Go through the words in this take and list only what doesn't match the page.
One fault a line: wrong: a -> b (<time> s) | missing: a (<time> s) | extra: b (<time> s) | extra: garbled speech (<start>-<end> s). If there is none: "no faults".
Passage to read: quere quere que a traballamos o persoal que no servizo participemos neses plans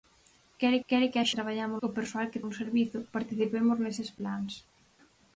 no faults